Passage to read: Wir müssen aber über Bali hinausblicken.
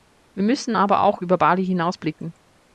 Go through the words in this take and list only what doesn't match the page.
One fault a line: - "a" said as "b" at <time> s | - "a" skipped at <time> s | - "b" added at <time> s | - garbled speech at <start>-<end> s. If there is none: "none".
- "auch" added at 1.0 s